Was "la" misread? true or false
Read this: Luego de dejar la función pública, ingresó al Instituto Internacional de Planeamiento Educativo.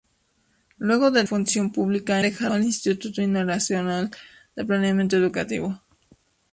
true